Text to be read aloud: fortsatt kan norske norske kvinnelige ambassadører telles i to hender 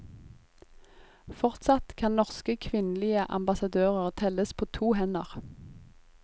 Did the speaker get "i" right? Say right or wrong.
wrong